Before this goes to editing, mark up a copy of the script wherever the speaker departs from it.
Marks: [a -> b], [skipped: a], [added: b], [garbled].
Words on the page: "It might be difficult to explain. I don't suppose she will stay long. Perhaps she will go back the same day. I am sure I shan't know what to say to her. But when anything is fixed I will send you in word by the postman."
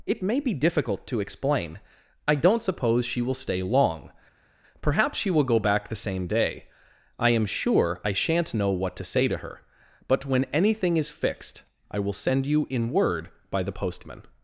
"It [might -> may] be difficult to explain. I don't suppose she will stay long. Perhaps she will go back the same day. I am sure I shan't know what to say to her. But when anything is fixed I will send you in word by the postman."